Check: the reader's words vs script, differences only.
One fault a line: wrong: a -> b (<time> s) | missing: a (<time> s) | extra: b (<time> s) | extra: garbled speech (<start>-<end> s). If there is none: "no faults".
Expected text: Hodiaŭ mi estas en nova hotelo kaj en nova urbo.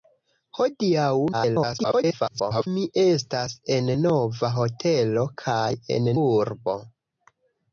extra: garbled speech (1.3-2.7 s)
missing: nova (6.1 s)